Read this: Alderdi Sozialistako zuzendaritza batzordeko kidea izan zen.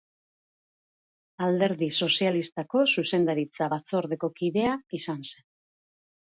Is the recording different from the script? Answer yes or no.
no